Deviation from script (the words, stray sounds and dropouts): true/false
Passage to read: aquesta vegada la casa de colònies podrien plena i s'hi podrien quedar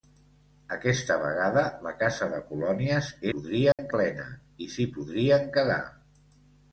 true